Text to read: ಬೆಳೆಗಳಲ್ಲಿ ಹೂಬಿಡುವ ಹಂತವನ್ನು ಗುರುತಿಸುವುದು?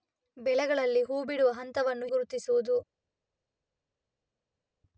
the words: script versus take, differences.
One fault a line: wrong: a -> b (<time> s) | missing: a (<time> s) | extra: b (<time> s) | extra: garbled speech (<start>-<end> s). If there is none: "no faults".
no faults